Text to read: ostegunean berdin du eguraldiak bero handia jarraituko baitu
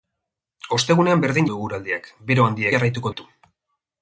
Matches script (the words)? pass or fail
pass